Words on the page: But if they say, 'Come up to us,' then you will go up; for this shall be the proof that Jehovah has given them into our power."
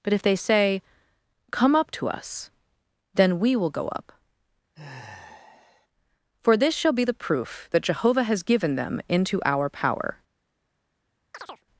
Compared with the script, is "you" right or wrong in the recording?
wrong